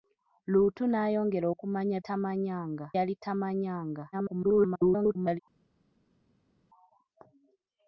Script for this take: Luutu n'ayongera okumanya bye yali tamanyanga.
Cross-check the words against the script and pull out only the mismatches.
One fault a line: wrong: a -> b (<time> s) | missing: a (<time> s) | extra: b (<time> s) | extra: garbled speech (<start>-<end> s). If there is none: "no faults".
wrong: bye -> tamanyanga (2.1 s)
extra: garbled speech (4.1-5.4 s)